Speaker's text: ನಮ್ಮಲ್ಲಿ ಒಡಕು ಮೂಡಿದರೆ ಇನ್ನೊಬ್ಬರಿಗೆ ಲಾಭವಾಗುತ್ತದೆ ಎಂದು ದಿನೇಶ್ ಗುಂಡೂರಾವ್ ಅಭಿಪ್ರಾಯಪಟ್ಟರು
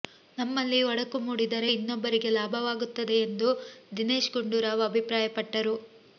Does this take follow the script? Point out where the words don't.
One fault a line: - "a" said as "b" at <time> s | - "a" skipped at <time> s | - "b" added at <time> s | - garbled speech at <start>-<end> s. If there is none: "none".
none